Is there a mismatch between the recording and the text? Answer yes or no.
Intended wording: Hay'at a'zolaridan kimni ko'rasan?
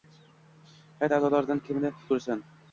no